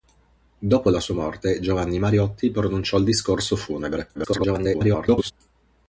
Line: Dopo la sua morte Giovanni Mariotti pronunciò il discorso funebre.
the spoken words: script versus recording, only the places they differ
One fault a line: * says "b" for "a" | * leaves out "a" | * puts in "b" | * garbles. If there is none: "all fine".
* garbles